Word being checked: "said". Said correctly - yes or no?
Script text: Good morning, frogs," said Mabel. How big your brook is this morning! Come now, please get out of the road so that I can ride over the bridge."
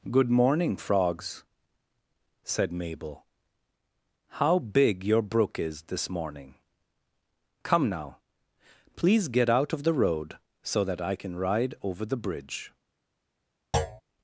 yes